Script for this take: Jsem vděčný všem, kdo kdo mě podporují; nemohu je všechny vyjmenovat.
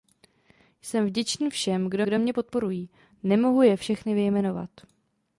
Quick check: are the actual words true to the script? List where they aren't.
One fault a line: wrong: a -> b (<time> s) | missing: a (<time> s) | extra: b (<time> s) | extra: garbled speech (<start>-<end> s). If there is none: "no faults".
no faults